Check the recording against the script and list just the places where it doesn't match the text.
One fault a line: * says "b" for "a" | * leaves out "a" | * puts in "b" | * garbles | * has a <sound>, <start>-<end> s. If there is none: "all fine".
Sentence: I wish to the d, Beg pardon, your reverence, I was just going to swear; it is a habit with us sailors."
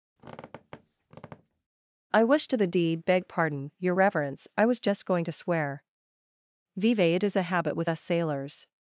* has a squeak, 0.2-1.7 s
* says "deed" for "d"
* puts in "vive"